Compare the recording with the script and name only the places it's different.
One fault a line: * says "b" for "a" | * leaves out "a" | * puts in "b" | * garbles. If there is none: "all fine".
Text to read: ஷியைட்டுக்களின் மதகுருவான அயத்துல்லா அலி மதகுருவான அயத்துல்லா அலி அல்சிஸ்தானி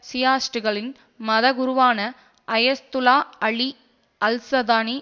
* leaves out "மதகுருவான அயத்துல்லா அலி"